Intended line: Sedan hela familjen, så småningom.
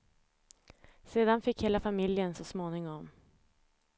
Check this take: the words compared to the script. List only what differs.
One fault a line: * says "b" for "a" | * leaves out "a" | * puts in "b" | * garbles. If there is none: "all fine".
* puts in "fick"